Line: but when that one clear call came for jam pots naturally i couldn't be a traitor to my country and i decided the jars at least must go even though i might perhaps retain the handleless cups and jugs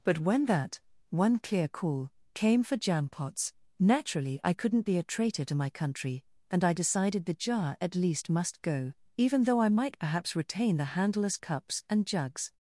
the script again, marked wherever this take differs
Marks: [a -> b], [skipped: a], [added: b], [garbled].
but when that one clear call came for jam pots naturally i couldn't be a traitor to my country and i decided the [jars -> jar] at least must go even though i might perhaps retain the handleless cups and jugs